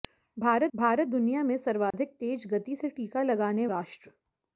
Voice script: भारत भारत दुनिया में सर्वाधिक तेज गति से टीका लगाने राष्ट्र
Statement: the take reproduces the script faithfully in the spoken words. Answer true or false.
true